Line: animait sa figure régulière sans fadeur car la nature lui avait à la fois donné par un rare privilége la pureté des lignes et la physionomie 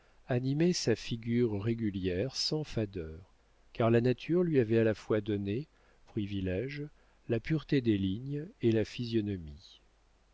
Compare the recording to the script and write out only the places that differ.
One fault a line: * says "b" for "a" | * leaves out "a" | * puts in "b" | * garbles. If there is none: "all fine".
* leaves out "par un rare"